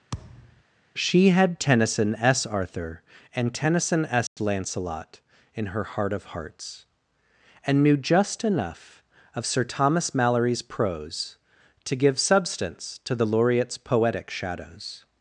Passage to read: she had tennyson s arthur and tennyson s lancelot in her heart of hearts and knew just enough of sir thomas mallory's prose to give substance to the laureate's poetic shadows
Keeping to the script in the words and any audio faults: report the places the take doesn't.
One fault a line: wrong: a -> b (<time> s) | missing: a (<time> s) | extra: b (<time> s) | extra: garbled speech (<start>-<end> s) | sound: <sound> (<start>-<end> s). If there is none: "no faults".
sound: thud (0.1-0.6 s)
sound: dropout (4.3-4.4 s)